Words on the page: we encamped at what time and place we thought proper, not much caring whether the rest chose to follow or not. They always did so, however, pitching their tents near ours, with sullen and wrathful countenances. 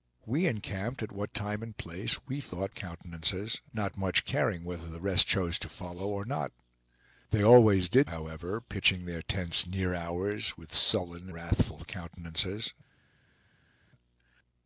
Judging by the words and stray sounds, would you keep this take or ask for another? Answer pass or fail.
fail